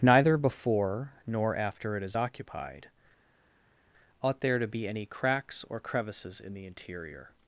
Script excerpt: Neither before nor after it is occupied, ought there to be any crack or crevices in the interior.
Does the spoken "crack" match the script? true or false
false